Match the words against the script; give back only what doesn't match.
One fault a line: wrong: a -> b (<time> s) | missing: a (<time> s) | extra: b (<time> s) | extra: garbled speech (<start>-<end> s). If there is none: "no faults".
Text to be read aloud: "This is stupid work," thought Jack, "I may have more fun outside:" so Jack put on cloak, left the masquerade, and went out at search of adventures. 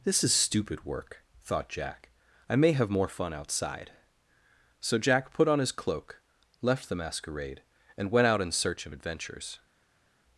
extra: his (5.6 s)
wrong: at -> in (8.4 s)